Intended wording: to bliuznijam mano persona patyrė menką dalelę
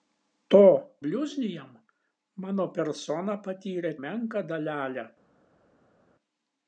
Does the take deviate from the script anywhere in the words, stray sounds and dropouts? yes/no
no